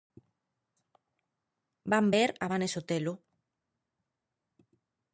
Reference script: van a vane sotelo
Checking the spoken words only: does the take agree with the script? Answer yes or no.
no